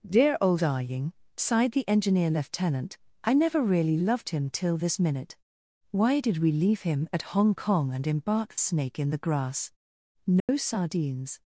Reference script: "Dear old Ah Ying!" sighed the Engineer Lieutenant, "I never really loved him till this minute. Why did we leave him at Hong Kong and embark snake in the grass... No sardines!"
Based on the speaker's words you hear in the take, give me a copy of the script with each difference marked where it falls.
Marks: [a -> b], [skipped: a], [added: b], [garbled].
"Dear old Ah Ying!" sighed the Engineer Lieutenant, "I never really loved him till this minute. Why did we leave him at Hong Kong and embark snake in the grass... No sardines!"